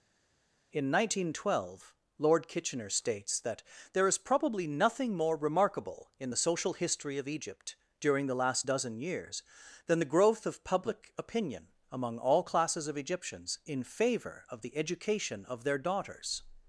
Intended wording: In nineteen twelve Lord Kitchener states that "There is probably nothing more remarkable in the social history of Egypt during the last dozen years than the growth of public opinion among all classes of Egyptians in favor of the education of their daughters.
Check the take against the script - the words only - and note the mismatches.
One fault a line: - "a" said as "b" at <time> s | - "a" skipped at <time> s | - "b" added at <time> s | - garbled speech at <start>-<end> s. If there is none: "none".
none